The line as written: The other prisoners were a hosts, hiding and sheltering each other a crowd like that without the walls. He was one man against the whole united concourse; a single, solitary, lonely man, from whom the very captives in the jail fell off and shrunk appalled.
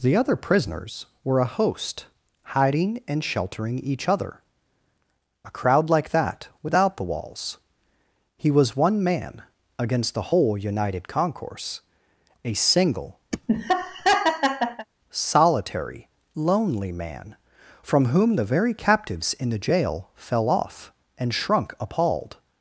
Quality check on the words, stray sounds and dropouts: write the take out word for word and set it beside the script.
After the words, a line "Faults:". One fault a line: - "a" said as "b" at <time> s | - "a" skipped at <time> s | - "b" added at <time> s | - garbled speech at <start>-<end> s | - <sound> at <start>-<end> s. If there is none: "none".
The other prisoners were a host, hiding and sheltering each other a crowd like that without the walls. He was one man against the whole united concourse; a single, solitary, lonely man, from whom the very captives in the jail fell off and shrunk appalled.
Faults:
- "hosts" said as "host" at 1.5 s
- laugh at 13.3-14.9 s